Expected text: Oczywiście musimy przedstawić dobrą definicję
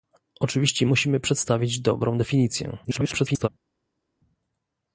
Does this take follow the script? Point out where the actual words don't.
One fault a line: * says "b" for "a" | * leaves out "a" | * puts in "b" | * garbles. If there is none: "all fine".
* garbles